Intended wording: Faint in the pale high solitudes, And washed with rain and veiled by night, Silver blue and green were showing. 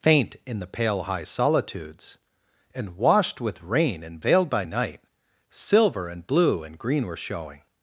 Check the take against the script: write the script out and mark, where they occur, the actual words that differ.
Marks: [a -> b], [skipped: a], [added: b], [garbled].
Faint in the pale high solitudes, And washed with rain and veiled by night, Silver [added: and] blue and green were showing.